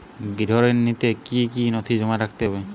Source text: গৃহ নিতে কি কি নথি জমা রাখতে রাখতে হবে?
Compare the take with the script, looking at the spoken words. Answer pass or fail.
fail